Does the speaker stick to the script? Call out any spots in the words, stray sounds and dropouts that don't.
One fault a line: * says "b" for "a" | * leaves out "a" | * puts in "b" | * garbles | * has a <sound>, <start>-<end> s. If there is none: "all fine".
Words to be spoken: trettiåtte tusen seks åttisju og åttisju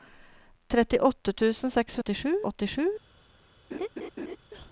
* has a laugh, 3.7-4.4 s